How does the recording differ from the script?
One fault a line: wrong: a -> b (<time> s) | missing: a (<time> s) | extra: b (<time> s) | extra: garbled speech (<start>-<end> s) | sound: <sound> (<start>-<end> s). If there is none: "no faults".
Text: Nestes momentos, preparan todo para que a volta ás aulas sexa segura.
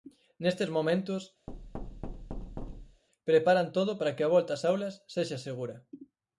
sound: thud (1.5-3.0 s)